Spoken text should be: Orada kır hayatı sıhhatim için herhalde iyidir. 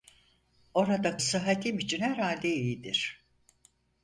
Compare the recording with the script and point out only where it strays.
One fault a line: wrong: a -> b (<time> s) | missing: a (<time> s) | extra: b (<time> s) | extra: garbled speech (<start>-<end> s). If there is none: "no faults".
missing: kır hayatı (1.2 s)